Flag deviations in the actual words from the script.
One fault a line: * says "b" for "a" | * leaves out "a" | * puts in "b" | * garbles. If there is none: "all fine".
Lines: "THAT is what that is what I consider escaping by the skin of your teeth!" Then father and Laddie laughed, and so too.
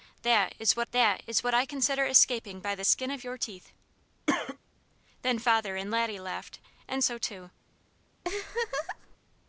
all fine